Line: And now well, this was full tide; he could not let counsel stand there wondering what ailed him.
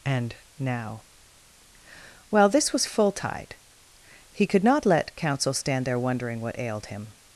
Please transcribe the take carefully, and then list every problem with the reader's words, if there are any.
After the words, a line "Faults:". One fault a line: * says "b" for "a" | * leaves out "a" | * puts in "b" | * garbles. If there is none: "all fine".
And now well, this was full tide; he could not let counsel stand there wondering what ailed him.
Faults:
all fine